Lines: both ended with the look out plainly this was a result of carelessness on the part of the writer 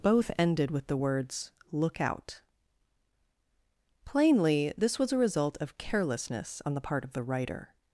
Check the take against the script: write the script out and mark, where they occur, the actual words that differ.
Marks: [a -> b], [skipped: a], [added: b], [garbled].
both ended with the [added: words] look out plainly this was a result of carelessness on the part of the writer